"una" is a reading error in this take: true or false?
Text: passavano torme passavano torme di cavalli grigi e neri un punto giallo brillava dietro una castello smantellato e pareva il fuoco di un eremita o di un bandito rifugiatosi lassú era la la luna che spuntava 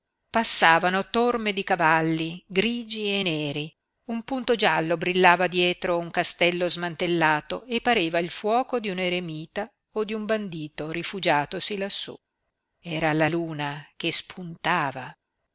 true